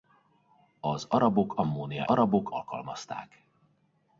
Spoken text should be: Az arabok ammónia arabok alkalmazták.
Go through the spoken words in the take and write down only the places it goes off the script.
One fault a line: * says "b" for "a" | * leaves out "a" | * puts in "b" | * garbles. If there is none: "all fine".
all fine